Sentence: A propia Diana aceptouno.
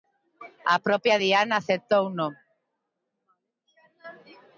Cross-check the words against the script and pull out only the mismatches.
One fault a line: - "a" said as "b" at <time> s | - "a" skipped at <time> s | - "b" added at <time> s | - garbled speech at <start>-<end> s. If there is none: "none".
none